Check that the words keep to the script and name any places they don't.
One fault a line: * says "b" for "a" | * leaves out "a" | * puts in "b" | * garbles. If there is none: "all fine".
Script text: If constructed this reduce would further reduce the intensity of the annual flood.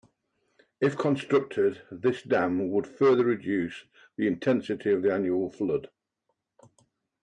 * says "dam" for "reduce"